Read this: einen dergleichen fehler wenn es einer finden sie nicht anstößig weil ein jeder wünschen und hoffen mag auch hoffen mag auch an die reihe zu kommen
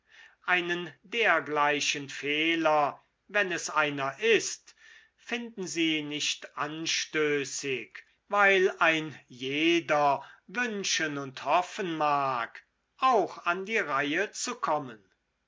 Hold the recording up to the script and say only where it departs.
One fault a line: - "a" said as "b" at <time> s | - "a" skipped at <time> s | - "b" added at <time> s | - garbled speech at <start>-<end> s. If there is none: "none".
- "ist" added at 4.2 s
- "hoffen mag auch" skipped at 13.4 s